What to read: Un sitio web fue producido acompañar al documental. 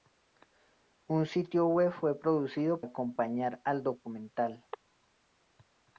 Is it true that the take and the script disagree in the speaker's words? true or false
false